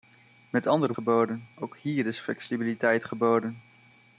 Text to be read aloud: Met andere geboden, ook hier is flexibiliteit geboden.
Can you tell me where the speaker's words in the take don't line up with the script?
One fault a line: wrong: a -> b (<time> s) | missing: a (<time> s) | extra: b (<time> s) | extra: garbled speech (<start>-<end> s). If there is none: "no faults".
no faults